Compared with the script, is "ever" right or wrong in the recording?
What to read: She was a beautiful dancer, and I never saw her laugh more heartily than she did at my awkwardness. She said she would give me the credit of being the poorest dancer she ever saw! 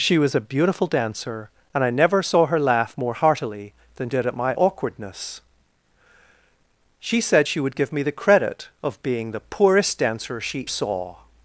wrong